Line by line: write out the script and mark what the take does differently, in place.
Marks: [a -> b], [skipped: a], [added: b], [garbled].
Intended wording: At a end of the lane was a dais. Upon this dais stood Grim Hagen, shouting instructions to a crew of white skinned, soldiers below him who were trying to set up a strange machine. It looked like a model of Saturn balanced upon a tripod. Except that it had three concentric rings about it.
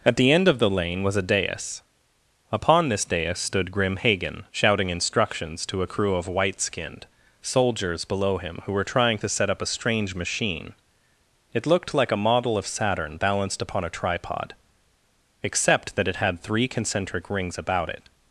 At [a -> the] end of the lane was a dais. Upon this dais stood Grim Hagen, shouting instructions to a crew of white skinned, soldiers below him who were trying to set up a strange machine. It looked like a model of Saturn balanced upon a tripod. Except that it had three concentric rings about it.